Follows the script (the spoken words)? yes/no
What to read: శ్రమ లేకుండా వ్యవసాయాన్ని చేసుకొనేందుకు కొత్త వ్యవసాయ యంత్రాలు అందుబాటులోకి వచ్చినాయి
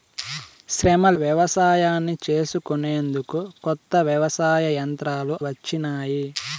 no